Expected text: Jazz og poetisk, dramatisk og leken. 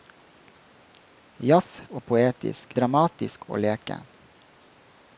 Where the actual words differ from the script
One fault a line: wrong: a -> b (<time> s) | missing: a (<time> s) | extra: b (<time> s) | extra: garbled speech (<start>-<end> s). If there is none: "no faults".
no faults